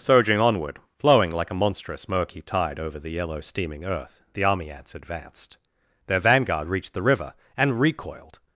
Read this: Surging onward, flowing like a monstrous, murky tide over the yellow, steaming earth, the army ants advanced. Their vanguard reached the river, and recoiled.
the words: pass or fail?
pass